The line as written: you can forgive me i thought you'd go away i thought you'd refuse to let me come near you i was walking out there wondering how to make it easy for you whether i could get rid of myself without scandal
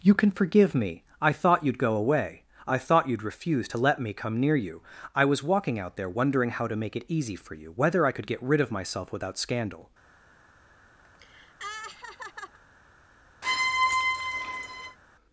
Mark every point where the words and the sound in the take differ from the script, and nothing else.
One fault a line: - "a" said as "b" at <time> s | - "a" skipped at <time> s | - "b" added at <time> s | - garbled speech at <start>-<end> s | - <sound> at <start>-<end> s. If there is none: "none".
- laugh at 11.0-12.6 s
- squeak at 13.4-15.0 s